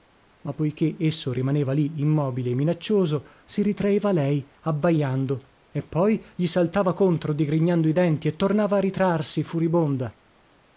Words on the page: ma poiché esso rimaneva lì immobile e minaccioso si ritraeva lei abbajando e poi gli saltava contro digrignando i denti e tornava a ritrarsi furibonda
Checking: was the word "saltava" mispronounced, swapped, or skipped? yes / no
no